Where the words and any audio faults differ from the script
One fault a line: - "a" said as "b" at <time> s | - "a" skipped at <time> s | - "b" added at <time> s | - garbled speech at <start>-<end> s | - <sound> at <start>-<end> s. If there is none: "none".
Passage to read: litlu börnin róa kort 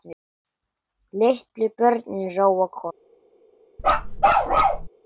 - bark at 3.8-4.9 s